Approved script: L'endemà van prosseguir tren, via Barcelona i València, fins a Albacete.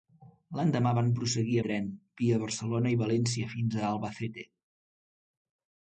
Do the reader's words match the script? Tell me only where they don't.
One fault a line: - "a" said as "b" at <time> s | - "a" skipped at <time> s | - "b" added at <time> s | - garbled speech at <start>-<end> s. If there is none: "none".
none